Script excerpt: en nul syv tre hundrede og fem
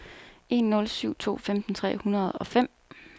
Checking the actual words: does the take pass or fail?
fail